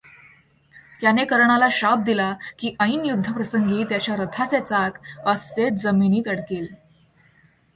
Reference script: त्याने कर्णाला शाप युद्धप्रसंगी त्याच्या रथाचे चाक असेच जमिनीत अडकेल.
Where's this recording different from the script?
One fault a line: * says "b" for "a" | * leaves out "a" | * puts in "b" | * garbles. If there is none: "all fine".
* puts in "दिला की ऐन"